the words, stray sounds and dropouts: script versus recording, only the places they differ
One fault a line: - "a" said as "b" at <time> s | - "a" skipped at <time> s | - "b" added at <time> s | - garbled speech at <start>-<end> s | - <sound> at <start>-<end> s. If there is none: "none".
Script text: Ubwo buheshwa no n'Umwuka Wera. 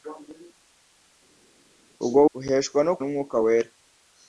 none